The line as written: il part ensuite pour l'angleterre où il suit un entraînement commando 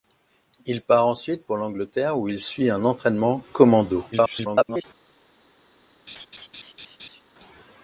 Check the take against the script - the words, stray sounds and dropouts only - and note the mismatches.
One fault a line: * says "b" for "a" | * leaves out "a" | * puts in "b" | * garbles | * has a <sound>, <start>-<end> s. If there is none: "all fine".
* garbles
* has a laugh, 6.1-7.2 s